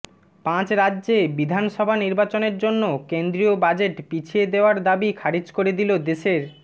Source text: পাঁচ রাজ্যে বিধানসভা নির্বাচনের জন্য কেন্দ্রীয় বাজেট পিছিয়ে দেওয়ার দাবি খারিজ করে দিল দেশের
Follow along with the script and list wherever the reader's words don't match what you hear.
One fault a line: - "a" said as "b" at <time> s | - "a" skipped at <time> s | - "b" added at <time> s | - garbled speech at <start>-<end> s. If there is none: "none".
none